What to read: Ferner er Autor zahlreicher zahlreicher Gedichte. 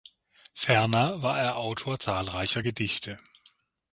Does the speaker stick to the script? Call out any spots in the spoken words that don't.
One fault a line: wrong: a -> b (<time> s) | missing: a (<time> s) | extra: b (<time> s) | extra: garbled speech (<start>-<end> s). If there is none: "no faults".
extra: war (1.2 s)
missing: zahlreicher (2.6 s)